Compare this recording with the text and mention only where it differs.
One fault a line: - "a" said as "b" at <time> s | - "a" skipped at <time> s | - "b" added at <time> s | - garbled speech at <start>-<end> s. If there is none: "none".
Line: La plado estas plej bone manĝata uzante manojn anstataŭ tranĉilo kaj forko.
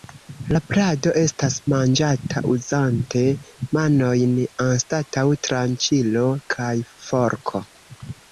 - "plej bone" skipped at 1.6 s